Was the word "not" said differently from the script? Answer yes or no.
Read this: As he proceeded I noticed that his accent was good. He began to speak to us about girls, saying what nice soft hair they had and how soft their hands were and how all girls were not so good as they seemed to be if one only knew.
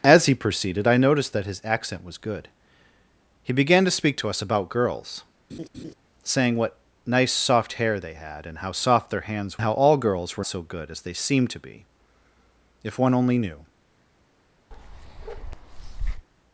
yes